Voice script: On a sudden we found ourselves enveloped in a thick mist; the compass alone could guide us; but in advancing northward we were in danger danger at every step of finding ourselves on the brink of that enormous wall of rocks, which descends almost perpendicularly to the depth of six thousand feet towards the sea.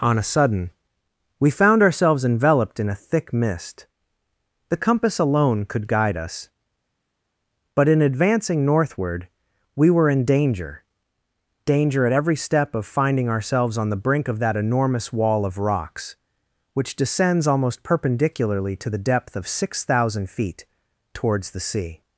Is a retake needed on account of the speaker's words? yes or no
no